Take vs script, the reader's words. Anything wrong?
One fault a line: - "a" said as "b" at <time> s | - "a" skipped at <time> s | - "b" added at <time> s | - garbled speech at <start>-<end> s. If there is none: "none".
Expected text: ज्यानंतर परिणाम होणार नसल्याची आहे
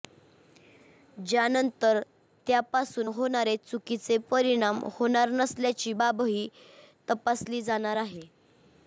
- "त्यापासून होणारे चुकीचे" added at 2.5 s
- "बाबही तपासली जाणार" added at 5.9 s